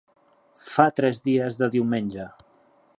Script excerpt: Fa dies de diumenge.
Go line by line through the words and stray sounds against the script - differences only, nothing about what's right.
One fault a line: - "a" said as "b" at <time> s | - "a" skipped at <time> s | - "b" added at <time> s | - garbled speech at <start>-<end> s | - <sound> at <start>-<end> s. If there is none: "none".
- "tres" added at 1.0 s